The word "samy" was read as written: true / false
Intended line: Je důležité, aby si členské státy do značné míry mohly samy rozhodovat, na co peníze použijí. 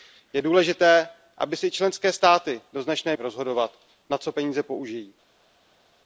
false